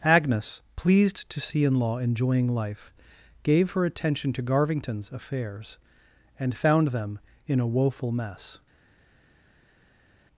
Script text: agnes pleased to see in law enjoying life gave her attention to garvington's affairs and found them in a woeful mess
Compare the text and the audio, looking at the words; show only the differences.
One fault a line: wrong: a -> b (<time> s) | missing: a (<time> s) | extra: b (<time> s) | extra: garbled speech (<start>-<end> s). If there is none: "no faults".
no faults